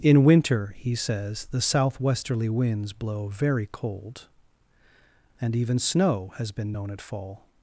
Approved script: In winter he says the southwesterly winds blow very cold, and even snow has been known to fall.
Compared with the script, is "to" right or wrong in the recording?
wrong